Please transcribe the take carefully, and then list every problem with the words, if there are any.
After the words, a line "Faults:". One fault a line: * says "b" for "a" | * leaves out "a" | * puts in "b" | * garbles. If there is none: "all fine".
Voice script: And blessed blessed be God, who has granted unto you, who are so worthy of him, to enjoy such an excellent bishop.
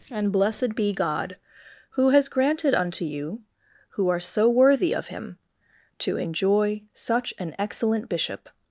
And blessed be God, who has granted unto you, who are so worthy of him, to enjoy such an excellent bishop.
Faults:
* leaves out "blessed"